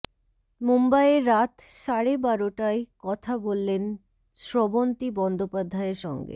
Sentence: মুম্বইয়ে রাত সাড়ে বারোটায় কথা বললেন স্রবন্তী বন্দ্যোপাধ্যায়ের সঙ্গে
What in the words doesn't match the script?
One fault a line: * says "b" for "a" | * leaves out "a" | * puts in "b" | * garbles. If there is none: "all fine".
all fine